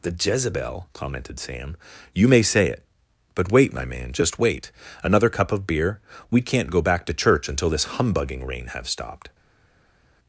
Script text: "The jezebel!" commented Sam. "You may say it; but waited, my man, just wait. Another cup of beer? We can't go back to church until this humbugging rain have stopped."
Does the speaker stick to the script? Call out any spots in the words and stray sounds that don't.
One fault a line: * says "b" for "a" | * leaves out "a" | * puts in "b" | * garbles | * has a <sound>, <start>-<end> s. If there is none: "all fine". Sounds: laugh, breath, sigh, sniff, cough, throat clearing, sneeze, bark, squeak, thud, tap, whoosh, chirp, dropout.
* says "wait" for "waited"